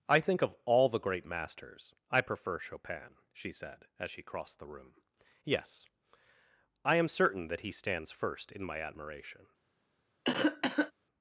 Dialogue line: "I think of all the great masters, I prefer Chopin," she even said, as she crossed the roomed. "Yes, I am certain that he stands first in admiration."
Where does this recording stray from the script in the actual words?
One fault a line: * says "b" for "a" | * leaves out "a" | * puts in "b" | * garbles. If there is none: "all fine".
* leaves out "even"
* says "room" for "roomed"
* puts in "my"